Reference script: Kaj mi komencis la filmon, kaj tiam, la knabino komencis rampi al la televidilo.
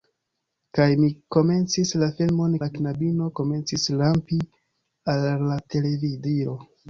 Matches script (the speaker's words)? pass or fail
fail